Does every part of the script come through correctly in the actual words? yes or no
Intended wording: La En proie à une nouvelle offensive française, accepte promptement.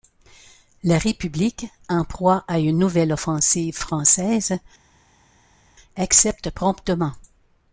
no